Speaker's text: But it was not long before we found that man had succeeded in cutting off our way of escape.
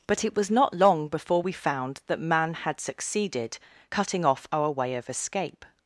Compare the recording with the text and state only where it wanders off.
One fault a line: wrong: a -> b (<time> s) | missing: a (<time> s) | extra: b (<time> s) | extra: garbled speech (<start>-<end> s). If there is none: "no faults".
missing: in (3.6 s)